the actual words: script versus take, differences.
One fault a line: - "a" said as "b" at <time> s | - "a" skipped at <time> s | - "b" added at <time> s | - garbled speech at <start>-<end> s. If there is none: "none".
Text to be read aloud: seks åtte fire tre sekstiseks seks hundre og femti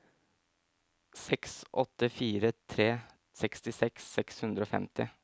none